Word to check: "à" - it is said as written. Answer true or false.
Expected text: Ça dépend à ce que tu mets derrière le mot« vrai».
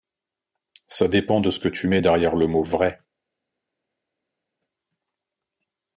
false